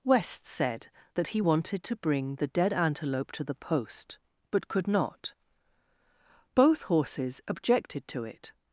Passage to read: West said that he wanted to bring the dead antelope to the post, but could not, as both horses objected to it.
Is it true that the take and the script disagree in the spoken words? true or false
true